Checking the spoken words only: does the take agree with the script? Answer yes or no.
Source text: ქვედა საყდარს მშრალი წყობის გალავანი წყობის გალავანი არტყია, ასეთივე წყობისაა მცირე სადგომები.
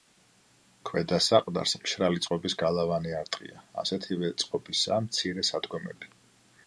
no